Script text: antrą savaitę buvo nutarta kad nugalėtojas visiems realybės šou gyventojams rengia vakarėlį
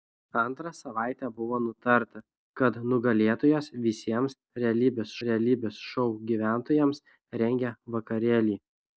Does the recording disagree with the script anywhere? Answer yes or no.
yes